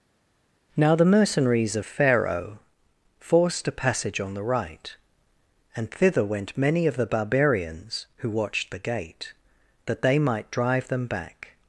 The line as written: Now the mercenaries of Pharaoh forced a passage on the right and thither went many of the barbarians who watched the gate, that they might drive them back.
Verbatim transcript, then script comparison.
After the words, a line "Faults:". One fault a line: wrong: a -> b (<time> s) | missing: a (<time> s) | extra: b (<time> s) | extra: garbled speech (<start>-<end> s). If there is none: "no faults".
Now the mercenaries of Pharaoh forced a passage on the right and thither went many of the barbarians who watched the gate, that they might drive them back.
Faults:
no faults